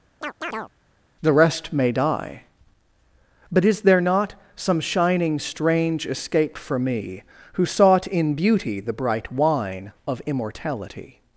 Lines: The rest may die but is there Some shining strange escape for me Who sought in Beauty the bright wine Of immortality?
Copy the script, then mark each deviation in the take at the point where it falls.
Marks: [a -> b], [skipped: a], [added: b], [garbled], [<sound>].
[chirp] The rest may die but is there [added: not] Some shining strange escape for me Who sought in Beauty the bright wine Of immortality?